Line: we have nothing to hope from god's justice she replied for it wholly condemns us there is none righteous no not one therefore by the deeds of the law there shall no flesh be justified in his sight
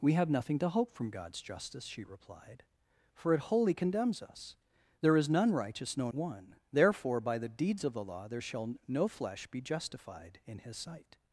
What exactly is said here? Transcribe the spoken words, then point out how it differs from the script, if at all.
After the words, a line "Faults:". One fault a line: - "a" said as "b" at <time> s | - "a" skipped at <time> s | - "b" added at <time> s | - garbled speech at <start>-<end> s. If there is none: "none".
we have nothing to hope from god's justice she replied for it wholly condemns us there is none righteous no one therefore by the deeds of the law there shall no flesh be justified in his sight
Faults:
- "not" skipped at 6.1 s